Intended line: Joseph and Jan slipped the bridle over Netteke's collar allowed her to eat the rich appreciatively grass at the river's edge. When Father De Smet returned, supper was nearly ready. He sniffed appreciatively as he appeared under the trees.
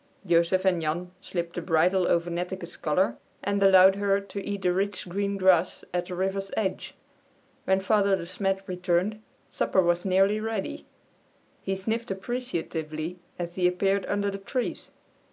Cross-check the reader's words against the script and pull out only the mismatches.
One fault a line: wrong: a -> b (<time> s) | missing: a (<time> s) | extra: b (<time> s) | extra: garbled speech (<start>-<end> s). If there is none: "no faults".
extra: and (3.4 s)
wrong: appreciatively -> green (5.1 s)